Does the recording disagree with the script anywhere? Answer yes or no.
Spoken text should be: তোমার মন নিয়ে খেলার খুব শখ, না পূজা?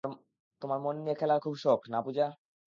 no